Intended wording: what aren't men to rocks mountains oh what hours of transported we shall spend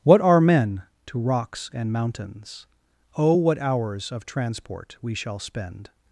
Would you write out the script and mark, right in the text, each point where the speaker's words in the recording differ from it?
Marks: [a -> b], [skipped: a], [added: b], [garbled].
what [aren't -> are] men to rocks [added: and] mountains oh what hours of [transported -> transport] we shall spend